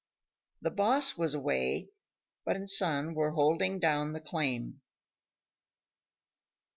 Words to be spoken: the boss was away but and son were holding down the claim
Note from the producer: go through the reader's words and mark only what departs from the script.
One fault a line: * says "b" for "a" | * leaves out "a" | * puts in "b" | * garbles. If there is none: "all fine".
all fine